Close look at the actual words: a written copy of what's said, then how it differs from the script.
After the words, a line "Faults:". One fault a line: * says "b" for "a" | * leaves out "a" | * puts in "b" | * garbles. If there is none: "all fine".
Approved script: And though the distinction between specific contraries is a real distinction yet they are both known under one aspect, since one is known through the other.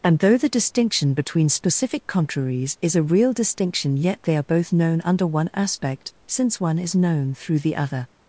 And though the distinction between specific contraries is a real distinction yet they are both known under one aspect, since one is known through the other.
Faults:
all fine